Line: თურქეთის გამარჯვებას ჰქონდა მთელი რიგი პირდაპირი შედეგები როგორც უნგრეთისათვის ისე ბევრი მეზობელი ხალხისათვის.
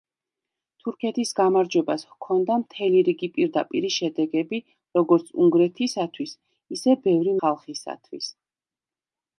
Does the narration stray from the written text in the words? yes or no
yes